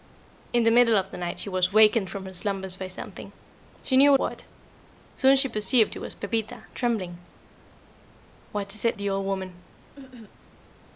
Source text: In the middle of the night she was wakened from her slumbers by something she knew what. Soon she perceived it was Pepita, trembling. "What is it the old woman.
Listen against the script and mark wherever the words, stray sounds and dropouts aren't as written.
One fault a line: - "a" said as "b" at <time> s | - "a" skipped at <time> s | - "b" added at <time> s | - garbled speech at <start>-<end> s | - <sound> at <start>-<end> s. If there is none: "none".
- cough at 10.0-10.4 s